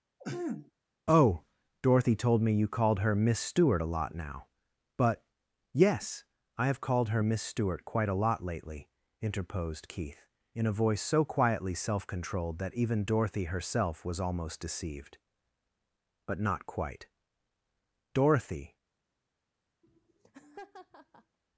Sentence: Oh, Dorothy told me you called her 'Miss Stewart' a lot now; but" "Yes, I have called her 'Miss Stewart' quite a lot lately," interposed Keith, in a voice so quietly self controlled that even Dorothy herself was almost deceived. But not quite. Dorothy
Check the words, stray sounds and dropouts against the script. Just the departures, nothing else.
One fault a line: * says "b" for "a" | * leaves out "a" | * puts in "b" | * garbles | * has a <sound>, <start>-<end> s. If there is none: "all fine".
* has a throat clearing, 0.2-0.7 s
* has a laugh, 19.8-21.4 s